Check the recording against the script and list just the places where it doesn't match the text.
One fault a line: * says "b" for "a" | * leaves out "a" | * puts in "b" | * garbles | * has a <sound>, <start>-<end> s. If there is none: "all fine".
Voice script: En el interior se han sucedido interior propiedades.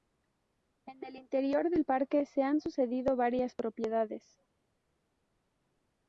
* puts in "del parque"
* says "varias" for "interior"